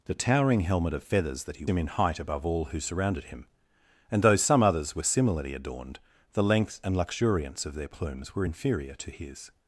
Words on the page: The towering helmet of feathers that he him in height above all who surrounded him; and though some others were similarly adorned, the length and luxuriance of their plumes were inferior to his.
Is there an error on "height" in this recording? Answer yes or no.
no